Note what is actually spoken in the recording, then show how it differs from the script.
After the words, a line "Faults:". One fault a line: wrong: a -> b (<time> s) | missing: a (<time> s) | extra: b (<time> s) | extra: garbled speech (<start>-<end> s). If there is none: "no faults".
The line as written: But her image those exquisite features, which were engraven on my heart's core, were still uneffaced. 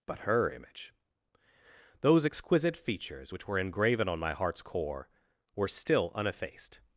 But her image those exquisite features, which were engraven on my heart's core, were still uneffaced.
Faults:
no faults